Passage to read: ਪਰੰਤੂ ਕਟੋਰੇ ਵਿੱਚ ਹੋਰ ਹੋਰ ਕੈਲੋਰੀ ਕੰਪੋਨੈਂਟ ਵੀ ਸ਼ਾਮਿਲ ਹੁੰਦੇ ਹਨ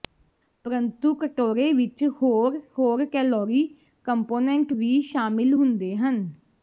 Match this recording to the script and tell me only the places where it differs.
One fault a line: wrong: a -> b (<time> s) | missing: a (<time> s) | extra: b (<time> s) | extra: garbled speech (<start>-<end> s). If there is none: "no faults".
no faults